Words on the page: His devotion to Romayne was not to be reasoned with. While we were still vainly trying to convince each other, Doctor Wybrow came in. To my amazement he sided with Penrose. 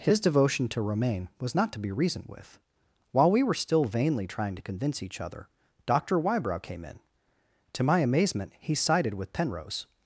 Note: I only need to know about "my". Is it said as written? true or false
true